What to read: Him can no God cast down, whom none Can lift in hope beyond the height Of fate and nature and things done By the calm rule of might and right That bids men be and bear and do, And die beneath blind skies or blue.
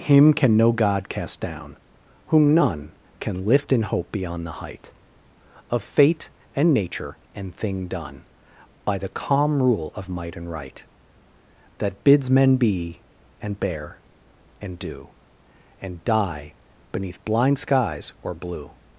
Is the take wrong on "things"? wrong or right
wrong